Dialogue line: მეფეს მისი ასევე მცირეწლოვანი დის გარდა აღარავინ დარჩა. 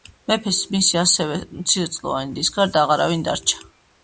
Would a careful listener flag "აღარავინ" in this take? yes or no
no